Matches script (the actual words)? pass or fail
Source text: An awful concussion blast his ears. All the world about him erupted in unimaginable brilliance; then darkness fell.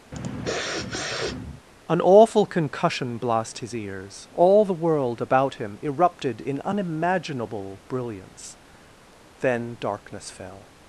pass